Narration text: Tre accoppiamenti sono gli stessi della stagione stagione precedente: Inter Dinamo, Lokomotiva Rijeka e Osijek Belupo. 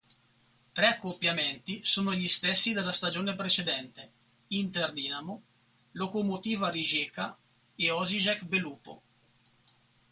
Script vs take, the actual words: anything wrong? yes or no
yes